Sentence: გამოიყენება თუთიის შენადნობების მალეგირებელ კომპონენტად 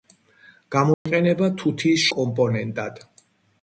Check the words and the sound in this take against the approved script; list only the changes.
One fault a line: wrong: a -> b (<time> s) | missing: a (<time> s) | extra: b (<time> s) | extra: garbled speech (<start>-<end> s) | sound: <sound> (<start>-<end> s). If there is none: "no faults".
sound: dropout (0.9-1.1 s)
missing: შენადნობების მალეგირებელ (2.0 s)